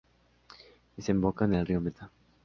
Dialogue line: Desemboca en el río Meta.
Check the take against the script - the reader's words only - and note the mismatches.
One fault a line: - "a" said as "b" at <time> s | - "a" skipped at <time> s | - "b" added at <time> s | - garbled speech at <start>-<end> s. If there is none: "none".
none